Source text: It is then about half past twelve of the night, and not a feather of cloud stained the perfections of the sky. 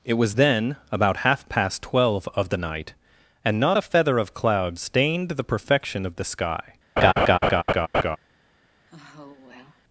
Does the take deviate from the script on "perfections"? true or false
true